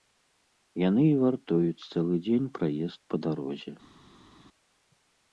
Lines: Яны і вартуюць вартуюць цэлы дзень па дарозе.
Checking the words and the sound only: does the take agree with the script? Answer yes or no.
no